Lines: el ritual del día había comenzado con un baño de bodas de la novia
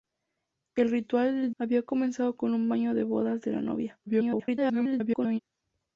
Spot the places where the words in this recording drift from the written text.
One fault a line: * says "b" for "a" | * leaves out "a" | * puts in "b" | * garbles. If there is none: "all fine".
* leaves out "día"
* garbles